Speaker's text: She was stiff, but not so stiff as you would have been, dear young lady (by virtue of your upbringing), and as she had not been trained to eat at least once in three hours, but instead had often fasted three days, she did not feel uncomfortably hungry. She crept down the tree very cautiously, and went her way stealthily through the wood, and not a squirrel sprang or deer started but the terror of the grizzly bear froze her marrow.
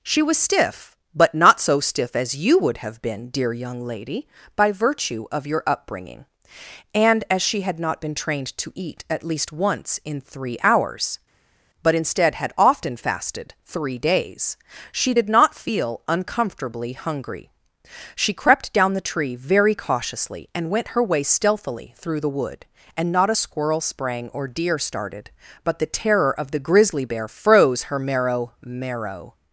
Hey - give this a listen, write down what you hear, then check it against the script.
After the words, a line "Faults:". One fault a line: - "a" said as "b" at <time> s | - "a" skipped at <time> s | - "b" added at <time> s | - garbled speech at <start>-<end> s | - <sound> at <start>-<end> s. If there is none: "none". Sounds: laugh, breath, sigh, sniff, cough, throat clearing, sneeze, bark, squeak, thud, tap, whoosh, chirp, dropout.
She was stiff, but not so stiff as you would have been, dear young lady (by virtue of your upbringing), and as she had not been trained to eat at least once in three hours, but instead had often fasted three days, she did not feel uncomfortably hungry. She crept down the tree very cautiously, and went her way stealthily through the wood, and not a squirrel sprang or deer started but the terror of the grizzly bear froze her marrow marrow.
Faults:
- "marrow" added at 28.6 s